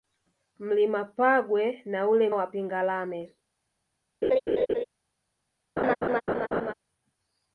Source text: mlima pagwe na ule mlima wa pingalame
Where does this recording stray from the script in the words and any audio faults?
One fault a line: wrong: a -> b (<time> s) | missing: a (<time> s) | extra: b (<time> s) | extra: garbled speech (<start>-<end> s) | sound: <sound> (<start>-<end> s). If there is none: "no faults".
missing: mlima (2.3 s)
sound: laugh (4.2-4.8 s)
sound: laugh (5.8-6.7 s)